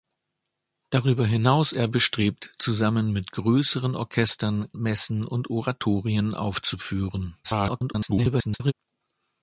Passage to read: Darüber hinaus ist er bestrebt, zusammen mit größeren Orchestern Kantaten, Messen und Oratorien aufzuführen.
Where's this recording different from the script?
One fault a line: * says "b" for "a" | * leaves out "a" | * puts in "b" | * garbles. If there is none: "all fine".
* leaves out "ist"
* leaves out "Kantaten"
* garbles